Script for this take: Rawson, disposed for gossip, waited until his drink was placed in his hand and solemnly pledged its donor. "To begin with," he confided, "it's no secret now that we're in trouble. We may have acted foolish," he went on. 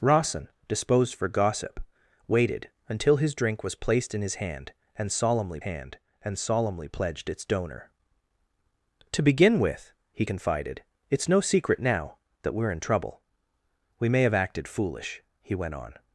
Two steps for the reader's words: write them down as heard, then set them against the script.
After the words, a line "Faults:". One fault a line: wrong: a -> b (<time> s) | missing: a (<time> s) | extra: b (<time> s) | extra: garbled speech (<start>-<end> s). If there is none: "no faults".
Rawson, disposed for gossip, waited until his drink was placed in his hand and solemnly hand and solemnly pledged its donor. "To begin with," he confided, "it's no secret now that we're in trouble. We may have acted foolish," he went on.
Faults:
extra: hand and solemnly (5.6 s)